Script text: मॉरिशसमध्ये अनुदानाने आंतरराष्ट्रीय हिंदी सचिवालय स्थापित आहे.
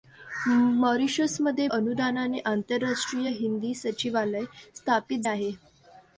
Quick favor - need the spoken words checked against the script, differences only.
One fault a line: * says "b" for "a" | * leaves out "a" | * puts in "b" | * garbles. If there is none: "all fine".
all fine